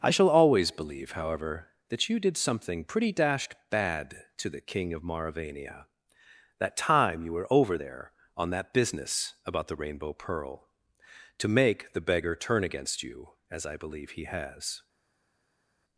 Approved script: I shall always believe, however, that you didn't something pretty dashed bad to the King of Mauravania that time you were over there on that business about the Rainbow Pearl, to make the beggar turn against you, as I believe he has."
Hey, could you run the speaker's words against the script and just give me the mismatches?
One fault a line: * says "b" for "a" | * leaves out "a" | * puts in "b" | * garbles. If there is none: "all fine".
* says "did" for "didn't"